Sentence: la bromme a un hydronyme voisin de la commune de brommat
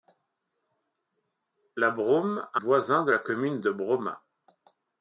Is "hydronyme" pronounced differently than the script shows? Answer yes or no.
yes